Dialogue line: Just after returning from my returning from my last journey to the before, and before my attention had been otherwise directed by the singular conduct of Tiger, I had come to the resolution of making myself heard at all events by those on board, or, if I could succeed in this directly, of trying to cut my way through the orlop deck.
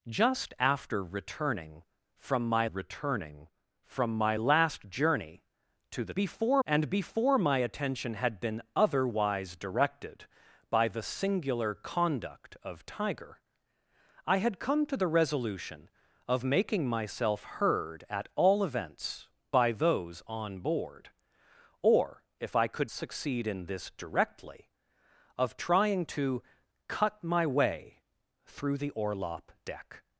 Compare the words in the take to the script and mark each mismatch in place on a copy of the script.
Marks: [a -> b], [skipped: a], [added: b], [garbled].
Just after returning from my returning from my last journey to the before, and before my attention had been otherwise directed by the singular conduct of Tiger, I had come to the resolution of making myself heard at all events by those on board, or, if I could succeed in this directly, of trying to cut my way through the orlop deck.